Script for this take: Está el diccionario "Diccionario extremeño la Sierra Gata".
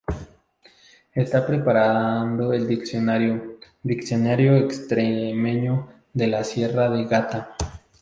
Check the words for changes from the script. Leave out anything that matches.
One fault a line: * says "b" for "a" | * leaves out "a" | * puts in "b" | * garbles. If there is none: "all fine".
* puts in "preparando"
* puts in "de"
* puts in "de"